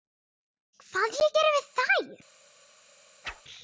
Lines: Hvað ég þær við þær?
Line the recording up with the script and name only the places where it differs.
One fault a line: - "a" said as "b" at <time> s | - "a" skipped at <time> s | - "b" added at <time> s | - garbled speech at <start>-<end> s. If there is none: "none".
- "þær" said as "geri" at 1.4 s